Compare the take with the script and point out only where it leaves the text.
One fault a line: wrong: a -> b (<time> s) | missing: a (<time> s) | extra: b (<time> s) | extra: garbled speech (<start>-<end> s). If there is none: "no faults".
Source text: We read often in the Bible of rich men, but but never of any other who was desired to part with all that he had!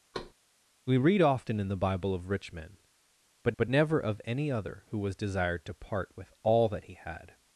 no faults